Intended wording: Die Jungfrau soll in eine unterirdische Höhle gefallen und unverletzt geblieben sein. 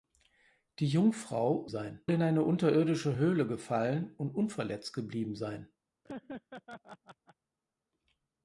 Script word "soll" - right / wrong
wrong